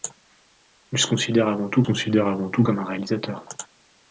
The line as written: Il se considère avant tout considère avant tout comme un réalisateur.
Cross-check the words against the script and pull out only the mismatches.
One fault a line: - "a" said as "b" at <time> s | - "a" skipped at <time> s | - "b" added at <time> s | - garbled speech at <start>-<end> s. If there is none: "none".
none